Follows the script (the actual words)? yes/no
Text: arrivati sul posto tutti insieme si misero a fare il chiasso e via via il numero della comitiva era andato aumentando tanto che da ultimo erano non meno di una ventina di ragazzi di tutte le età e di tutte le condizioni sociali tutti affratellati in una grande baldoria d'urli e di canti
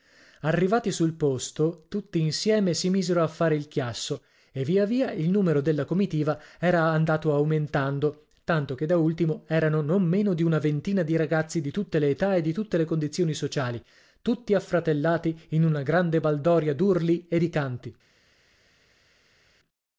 yes